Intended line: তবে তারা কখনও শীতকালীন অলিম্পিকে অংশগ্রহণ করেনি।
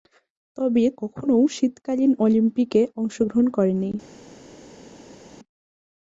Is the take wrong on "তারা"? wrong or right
wrong